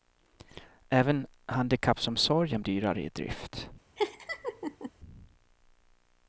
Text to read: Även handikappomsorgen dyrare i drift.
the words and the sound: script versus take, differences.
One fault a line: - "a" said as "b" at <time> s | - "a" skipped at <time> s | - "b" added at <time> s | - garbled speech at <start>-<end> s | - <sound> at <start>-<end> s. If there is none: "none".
- laugh at 4.0-4.9 s